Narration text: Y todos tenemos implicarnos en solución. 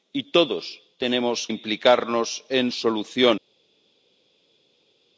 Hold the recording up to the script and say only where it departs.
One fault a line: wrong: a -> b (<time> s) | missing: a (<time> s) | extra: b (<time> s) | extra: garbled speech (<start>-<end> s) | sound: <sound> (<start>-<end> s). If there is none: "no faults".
no faults